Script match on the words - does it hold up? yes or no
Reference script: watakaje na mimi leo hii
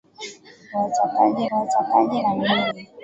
no